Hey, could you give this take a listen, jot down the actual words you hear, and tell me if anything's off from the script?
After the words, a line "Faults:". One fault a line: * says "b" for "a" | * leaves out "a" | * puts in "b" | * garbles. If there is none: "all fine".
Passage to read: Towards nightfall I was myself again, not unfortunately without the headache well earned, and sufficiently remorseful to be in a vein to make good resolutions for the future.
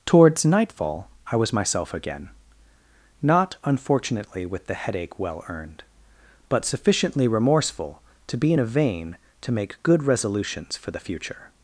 Towards nightfall I was myself again, not unfortunately with the headache well earned, but sufficiently remorseful to be in a vein to make good resolutions for the future.
Faults:
* says "with" for "without"
* says "but" for "and"